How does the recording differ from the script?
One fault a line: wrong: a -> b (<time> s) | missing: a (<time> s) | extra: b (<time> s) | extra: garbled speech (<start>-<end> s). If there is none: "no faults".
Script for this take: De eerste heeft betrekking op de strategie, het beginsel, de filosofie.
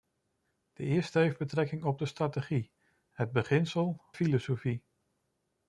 missing: de (4.0 s)